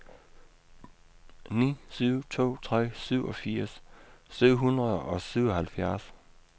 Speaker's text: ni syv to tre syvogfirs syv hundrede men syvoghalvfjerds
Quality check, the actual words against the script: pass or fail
fail